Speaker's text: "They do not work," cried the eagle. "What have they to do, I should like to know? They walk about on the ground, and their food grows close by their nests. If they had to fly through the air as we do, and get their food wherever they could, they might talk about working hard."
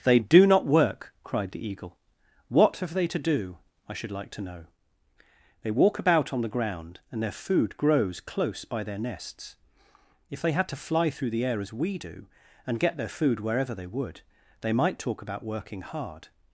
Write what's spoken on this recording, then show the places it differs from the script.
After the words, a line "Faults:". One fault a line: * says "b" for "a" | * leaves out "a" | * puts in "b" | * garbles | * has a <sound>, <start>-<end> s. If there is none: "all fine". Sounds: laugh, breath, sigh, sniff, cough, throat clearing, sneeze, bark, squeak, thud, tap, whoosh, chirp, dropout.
"They do not work," cried the eagle. "What have they to do, I should like to know? They walk about on the ground, and their food grows close by their nests. If they had to fly through the air as we do, and get their food wherever they would, they might talk about working hard."
Faults:
* says "would" for "could"